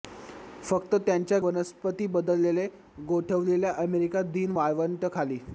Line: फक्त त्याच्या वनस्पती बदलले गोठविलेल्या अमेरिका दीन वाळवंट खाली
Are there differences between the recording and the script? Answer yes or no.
no